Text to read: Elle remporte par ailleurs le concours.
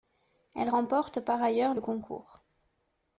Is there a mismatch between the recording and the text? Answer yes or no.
no